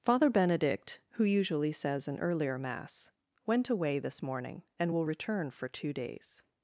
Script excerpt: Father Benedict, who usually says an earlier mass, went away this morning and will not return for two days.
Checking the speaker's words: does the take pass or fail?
fail